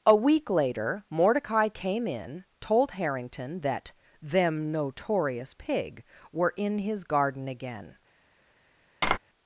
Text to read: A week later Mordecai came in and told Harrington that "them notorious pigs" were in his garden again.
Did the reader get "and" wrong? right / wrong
wrong